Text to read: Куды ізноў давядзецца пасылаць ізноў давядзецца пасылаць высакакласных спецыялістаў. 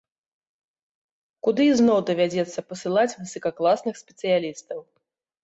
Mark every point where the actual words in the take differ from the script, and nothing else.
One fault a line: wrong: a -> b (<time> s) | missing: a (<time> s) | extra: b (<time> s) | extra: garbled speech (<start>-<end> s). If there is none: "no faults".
missing: ізноў давядзецца пасылаць (3.2 s)